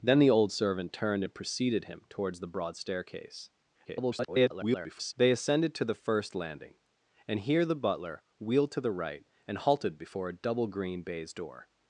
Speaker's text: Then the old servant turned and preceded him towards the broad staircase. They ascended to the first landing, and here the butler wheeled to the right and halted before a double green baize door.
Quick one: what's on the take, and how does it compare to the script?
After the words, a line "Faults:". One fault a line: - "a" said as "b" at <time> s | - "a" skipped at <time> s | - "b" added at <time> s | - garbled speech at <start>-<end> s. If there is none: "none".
Then the old servant turned and preceded him towards the broad staircase. [garbled] They ascended to the first landing, and here the butler wheeled to the right and halted before a double green baize door.
Faults:
- garbled speech at 3.8-5.1 s